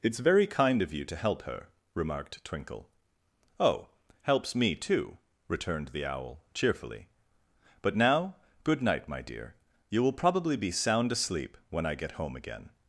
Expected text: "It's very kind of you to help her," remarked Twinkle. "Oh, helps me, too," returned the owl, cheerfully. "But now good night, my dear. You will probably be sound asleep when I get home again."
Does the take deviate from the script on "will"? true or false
false